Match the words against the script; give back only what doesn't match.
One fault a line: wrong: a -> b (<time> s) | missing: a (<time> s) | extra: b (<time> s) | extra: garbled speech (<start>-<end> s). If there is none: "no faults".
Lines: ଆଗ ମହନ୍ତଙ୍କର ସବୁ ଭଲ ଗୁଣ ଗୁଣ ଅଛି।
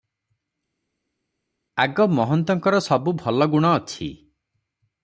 missing: ଗୁଣ (3.7 s)